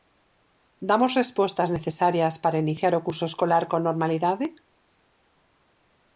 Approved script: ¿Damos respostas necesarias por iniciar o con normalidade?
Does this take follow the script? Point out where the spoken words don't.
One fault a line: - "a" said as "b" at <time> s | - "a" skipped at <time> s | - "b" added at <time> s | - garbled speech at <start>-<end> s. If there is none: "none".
- "por" said as "para" at 2.4 s
- "curso escolar" added at 3.1 s